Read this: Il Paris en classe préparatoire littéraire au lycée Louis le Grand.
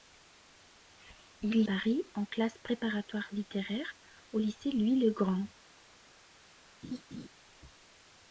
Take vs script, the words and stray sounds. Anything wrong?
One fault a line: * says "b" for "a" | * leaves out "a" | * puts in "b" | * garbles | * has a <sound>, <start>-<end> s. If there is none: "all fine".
* has a laugh, 6.8-7.3 s